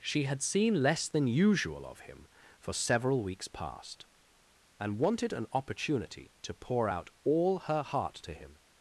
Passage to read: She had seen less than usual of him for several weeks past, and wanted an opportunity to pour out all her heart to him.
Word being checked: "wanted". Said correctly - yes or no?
yes